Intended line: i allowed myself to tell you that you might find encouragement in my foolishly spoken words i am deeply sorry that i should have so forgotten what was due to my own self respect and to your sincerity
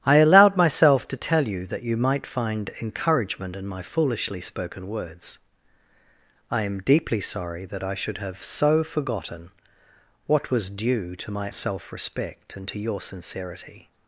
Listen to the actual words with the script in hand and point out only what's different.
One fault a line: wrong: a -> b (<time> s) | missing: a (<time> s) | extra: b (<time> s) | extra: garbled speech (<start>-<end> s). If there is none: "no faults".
missing: own (11.5 s)